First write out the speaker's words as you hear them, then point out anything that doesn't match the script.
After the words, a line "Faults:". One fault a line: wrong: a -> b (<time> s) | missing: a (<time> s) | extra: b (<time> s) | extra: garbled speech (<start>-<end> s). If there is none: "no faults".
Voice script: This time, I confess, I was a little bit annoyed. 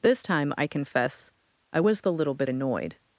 This time, I confess, I was the little bit annoyed.
Faults:
wrong: a -> the (2.0 s)